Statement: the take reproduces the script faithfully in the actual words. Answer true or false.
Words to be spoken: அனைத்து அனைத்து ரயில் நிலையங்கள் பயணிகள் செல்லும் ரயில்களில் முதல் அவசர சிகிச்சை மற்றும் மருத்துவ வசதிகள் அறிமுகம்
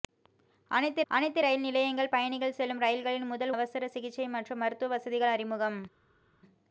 true